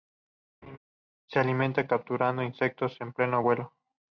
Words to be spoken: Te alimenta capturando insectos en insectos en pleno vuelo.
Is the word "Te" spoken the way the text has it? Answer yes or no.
no